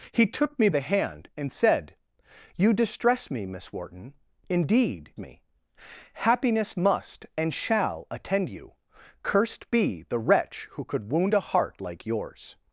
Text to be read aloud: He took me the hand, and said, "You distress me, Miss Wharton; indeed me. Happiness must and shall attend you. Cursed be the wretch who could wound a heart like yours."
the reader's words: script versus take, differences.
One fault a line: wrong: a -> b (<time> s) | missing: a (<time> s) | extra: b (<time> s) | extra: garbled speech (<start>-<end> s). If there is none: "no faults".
no faults